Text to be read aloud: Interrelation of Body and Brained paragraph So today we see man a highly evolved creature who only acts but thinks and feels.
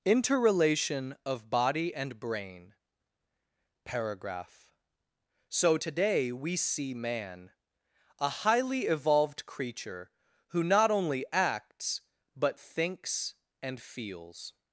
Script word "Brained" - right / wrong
wrong